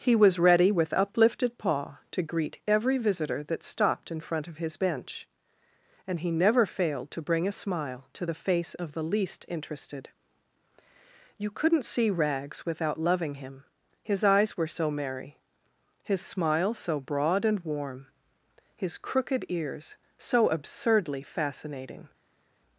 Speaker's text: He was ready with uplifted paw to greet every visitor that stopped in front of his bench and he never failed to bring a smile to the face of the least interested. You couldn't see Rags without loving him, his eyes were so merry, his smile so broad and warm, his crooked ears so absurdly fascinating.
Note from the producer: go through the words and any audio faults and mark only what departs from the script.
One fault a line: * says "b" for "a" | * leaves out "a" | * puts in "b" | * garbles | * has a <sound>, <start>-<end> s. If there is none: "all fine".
all fine